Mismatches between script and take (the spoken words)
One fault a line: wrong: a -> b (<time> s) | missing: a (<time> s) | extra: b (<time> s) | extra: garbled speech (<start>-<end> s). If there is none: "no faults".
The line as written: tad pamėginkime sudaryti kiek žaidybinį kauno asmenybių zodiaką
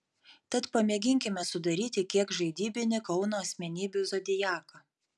no faults